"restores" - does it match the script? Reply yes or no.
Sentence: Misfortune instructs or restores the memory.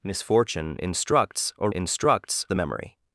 no